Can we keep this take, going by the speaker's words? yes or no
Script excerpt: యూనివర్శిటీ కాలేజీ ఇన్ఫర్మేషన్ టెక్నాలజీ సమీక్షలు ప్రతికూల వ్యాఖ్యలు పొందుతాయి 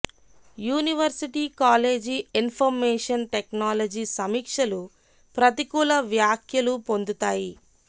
yes